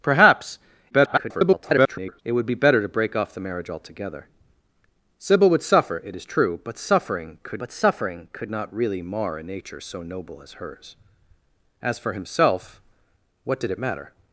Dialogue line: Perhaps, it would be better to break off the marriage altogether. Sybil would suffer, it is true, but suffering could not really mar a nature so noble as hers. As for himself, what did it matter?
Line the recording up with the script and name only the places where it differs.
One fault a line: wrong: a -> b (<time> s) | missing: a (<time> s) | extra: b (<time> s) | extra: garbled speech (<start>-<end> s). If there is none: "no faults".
extra: garbled speech (0.9-2.2 s)
extra: but suffering could (7.6 s)